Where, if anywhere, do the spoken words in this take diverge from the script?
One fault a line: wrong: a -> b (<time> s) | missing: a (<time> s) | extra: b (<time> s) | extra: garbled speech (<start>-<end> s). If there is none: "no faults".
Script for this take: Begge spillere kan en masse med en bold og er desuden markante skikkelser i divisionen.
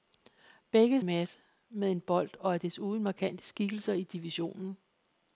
missing: spillere kan (1.0 s)